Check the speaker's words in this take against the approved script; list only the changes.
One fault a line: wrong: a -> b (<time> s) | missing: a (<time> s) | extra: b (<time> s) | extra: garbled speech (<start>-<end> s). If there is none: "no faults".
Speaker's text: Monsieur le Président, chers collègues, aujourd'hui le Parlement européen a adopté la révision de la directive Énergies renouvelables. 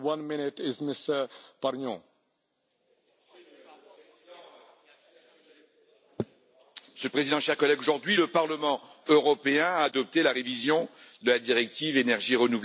no faults